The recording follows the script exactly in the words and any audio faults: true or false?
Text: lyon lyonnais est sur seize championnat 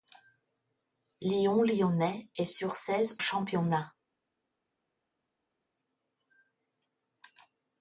true